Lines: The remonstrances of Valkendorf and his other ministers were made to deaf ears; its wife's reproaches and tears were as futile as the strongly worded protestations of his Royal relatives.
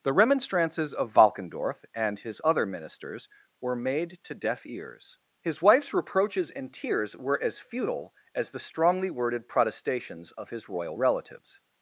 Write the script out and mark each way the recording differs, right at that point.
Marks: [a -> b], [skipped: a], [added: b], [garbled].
The remonstrances of Valkendorf and his other ministers were made to deaf ears; [its -> his] wife's reproaches and tears were as futile as the strongly worded protestations of his Royal relatives.